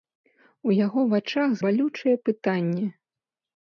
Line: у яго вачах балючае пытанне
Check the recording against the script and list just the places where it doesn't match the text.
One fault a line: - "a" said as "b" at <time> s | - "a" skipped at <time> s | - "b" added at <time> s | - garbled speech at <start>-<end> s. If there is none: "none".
none